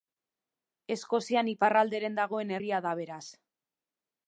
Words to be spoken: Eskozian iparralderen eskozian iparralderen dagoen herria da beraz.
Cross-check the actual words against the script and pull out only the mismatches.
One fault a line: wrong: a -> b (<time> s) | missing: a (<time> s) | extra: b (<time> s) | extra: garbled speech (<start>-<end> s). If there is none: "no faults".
missing: eskozian iparralderen (2.2 s)